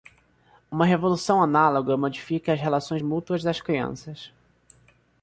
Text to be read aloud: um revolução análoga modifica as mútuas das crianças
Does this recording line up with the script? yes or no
no